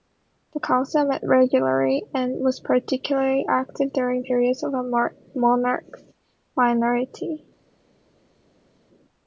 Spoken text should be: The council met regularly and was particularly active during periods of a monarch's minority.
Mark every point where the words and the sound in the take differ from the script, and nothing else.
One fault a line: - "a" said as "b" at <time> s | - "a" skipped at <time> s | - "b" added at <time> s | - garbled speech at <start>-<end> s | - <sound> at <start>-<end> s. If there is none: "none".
none